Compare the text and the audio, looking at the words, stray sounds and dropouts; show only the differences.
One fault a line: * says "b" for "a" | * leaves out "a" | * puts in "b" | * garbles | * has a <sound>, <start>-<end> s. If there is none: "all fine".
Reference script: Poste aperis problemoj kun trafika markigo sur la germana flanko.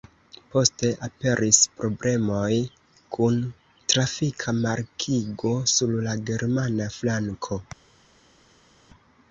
all fine